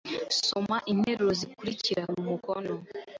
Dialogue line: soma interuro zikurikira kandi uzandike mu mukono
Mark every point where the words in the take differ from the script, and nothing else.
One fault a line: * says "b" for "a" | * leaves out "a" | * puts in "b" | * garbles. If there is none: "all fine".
* leaves out "kandi uzandike"